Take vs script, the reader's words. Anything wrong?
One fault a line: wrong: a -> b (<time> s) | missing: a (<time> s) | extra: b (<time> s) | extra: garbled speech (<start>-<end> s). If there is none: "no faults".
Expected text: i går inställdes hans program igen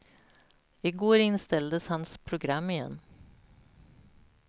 no faults